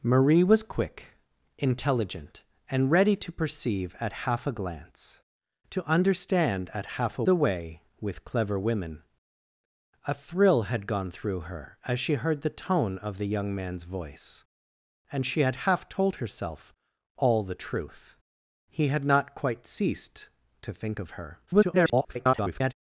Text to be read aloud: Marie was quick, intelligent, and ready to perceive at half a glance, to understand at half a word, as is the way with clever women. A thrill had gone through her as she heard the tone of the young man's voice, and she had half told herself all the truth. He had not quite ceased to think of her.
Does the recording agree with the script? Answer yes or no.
no